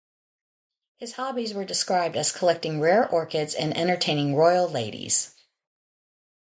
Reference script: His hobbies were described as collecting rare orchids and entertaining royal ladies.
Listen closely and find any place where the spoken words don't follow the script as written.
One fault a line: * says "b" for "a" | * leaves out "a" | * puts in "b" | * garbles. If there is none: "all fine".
all fine